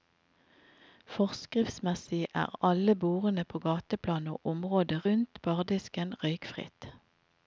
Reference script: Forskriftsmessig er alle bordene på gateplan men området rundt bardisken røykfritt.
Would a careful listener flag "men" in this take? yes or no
yes